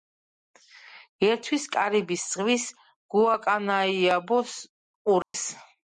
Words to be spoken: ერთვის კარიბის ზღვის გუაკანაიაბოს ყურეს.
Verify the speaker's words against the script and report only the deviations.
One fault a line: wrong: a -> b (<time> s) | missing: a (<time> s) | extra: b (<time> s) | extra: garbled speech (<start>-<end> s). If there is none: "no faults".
no faults